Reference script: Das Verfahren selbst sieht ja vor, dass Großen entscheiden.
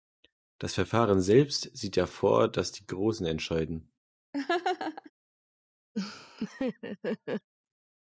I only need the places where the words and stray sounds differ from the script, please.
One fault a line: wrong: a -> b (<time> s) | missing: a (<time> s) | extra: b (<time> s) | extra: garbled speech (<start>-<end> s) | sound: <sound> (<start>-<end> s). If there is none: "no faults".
extra: die (2.7 s)
sound: laugh (4.3-5.1 s)
sound: laugh (5.9-7.5 s)